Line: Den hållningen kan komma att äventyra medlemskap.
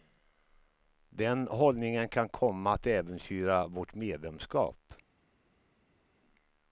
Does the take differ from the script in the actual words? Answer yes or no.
yes